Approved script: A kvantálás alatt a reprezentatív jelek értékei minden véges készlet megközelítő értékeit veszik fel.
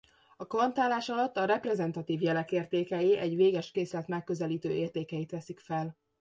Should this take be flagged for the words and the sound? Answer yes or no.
yes